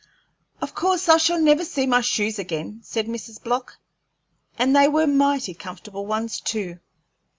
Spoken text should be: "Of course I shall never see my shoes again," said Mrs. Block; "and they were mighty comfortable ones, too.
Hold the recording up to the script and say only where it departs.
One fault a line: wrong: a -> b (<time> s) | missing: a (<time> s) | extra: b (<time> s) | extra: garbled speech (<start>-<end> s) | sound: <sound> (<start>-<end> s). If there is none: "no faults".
no faults